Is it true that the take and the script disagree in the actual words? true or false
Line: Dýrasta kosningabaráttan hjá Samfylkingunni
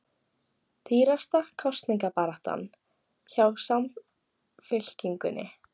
false